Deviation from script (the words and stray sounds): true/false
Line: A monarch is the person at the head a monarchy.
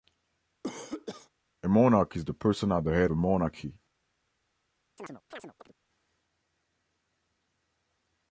true